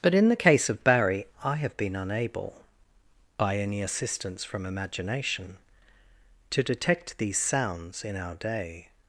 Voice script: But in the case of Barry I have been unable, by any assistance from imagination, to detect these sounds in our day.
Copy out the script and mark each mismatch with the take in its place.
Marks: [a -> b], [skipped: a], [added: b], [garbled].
But in the case of Barry I have been unable, by any assistance from imagination, to detect these sounds in our day.